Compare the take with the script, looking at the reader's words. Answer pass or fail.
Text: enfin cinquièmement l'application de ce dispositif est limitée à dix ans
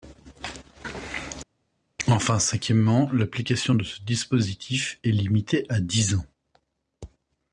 pass